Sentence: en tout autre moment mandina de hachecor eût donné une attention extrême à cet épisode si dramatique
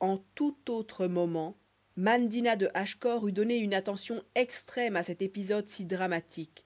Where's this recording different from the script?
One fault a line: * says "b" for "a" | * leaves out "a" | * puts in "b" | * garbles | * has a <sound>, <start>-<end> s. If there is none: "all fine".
all fine